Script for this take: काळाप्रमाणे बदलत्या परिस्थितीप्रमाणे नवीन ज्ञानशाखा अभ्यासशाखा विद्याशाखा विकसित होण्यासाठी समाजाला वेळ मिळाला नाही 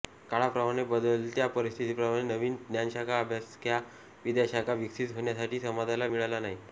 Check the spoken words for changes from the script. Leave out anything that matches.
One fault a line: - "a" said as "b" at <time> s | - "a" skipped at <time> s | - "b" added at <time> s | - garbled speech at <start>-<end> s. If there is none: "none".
- "वेळ" skipped at 6.1 s